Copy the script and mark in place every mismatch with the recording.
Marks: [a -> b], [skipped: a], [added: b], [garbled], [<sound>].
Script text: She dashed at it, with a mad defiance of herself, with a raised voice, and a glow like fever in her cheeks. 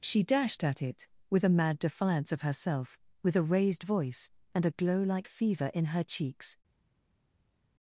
She dashed at it, with a mad defiance of herself, with a raised voice, and a glow like fever in her cheeks.